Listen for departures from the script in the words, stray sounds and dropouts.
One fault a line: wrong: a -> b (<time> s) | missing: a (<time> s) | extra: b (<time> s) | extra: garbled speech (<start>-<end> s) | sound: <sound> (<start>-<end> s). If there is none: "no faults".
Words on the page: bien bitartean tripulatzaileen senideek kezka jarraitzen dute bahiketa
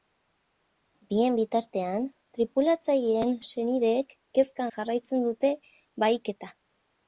no faults